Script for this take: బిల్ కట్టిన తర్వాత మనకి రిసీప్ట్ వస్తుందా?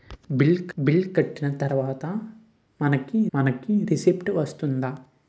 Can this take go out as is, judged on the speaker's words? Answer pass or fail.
fail